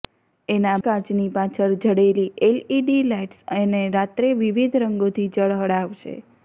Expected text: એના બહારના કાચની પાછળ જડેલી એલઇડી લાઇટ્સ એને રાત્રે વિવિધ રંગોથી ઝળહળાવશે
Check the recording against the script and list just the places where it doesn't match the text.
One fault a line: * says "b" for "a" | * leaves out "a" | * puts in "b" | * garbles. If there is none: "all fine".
* leaves out "બહારના"